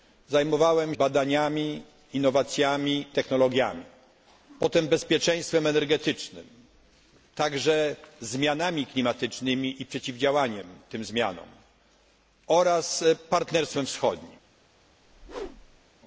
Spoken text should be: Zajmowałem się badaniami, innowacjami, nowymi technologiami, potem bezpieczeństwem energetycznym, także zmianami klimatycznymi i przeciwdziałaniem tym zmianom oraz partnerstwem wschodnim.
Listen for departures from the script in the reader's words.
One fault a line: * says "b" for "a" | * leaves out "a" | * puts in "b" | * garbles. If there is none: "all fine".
* leaves out "się"
* leaves out "nowymi"